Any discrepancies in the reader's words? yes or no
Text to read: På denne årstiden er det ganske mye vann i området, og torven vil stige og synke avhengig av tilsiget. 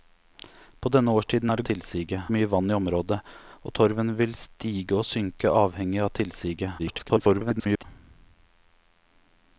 yes